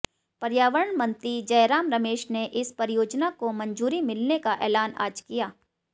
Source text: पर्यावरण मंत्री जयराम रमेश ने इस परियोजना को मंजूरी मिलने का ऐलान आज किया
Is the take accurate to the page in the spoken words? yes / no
yes